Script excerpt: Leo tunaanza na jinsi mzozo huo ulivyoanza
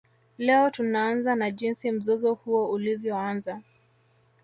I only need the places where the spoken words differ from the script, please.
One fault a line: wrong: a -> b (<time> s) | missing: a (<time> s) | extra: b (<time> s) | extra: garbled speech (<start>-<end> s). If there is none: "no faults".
no faults